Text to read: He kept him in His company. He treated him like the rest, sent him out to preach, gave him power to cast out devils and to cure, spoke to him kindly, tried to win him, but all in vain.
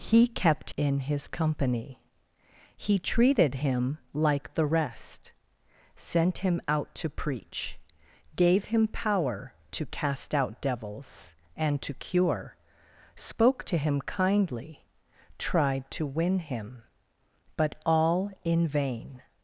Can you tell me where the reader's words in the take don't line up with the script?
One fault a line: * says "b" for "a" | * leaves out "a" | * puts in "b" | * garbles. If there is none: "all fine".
* leaves out "him"